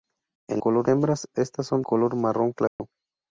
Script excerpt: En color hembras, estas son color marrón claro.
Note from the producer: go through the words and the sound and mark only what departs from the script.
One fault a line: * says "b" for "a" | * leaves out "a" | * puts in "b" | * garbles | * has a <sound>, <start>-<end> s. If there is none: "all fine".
* has a dropout, 2.7-2.8 s